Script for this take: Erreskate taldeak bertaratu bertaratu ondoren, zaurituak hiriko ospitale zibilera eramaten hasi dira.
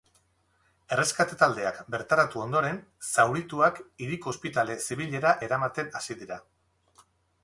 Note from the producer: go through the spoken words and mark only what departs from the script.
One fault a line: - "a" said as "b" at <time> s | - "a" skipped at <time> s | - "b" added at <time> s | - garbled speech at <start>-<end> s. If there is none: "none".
- "bertaratu" skipped at 2.4 s